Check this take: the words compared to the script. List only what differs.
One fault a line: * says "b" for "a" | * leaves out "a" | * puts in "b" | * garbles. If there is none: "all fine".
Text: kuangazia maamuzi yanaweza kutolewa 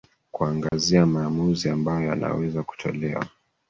* puts in "ambayo"